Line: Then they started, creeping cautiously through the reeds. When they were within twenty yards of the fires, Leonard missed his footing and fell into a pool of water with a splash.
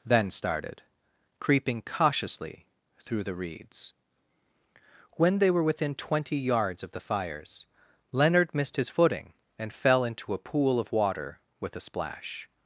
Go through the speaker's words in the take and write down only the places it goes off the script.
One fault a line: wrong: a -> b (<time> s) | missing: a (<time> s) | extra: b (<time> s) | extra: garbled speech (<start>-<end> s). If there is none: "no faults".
missing: they (0.3 s)